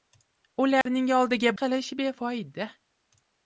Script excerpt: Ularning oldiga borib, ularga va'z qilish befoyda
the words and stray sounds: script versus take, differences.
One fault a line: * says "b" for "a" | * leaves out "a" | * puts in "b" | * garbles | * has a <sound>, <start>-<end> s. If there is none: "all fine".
* has a dropout, 0.8-0.9 s
* leaves out "borib ularga va'z"